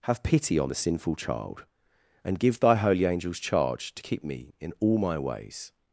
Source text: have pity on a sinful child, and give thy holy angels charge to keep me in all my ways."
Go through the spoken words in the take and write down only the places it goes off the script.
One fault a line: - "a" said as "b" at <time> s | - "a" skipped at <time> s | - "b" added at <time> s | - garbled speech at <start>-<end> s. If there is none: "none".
- "a" said as "the" at 0.7 s